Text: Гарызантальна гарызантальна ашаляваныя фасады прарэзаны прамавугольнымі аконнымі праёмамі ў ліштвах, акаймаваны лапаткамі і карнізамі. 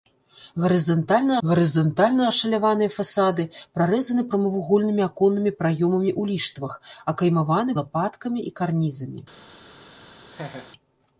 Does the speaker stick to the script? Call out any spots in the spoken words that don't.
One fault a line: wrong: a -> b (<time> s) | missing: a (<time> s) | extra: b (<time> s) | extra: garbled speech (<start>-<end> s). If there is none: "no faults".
no faults